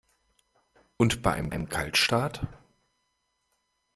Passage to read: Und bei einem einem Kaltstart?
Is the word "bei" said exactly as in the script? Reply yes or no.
yes